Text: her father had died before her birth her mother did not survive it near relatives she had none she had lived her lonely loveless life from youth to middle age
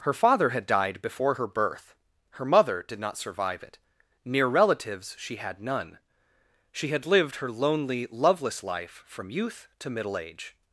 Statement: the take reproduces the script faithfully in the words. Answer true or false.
true